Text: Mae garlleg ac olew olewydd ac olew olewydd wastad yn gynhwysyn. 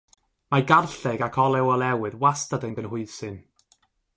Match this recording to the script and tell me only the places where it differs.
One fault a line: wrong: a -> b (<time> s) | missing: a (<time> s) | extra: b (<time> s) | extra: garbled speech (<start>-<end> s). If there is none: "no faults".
missing: ac olew olewydd (2.2 s)